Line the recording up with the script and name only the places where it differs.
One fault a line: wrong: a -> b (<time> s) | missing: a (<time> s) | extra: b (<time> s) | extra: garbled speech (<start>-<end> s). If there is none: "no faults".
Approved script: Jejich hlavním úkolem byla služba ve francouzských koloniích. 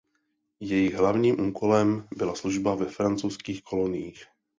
no faults